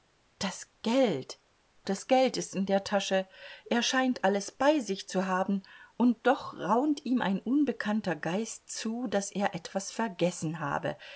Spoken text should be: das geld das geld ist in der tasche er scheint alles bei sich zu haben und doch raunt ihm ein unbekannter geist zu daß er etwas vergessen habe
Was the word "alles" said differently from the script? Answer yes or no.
no